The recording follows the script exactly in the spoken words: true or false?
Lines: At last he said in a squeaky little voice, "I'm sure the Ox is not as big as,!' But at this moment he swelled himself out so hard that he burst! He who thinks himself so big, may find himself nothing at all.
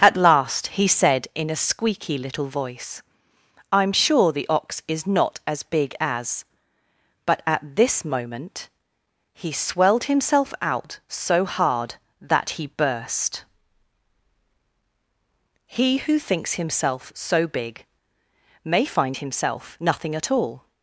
true